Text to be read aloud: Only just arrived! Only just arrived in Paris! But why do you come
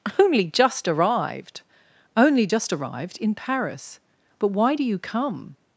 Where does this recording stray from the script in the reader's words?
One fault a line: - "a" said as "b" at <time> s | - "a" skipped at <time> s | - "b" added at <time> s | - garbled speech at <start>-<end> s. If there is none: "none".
none